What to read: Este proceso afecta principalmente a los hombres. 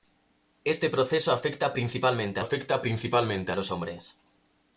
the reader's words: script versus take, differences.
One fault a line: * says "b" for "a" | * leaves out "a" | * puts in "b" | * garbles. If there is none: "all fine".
* puts in "afecta principalmente"